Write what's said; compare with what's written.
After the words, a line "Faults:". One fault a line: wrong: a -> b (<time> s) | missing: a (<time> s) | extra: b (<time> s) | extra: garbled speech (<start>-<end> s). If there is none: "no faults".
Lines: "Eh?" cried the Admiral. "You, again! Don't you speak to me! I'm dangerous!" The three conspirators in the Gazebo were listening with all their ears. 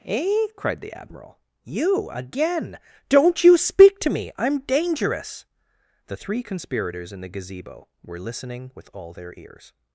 "Eh?" cried the Admiral. "You, again! Don't you speak to me! I'm dangerous!" The three conspirators in the Gazebo were listening with all their ears.
Faults:
no faults